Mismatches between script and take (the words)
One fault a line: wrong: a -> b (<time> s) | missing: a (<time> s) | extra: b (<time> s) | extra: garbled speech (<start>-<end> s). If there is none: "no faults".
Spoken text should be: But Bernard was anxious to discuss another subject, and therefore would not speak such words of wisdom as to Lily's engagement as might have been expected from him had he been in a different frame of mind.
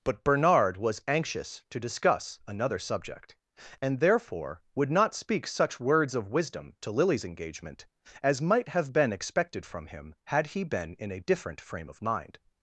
missing: as (6.8 s)